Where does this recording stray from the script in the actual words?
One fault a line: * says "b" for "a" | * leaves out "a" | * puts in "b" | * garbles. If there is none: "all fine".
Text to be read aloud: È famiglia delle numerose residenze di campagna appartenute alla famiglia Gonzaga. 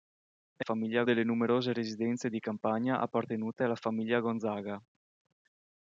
all fine